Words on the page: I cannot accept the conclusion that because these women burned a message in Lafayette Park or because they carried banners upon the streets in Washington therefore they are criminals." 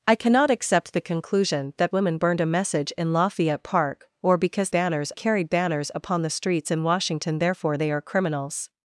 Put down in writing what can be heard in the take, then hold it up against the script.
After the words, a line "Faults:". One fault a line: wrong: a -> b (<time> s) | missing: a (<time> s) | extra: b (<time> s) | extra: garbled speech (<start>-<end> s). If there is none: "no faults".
I cannot accept the conclusion that women burned a message in Lafayette Park or because banners carried banners upon the streets in Washington therefore they are criminals."
Faults:
missing: because these (1.9 s)
wrong: they -> banners (4.7 s)